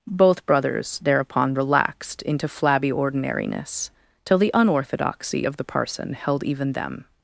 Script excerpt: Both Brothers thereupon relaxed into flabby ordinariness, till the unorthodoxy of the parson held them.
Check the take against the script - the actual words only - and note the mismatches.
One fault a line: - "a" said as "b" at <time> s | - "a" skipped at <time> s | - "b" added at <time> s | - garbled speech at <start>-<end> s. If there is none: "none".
- "even" added at 6.4 s